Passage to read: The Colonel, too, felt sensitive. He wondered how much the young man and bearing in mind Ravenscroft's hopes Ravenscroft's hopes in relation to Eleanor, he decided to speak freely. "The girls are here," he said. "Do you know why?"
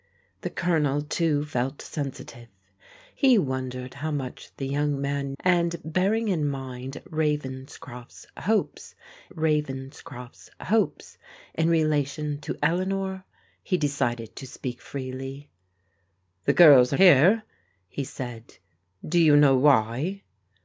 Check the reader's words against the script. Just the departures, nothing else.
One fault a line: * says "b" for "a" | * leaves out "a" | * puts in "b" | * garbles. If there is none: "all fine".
all fine